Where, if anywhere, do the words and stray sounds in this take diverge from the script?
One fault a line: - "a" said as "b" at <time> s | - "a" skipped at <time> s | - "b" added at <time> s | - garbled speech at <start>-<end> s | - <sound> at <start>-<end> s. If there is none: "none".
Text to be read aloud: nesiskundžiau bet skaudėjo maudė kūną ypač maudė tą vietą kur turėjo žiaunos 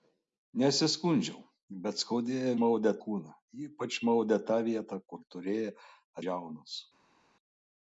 none